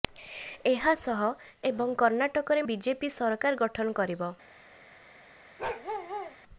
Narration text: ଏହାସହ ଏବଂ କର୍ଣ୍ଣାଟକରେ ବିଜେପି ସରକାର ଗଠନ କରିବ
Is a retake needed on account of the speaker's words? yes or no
no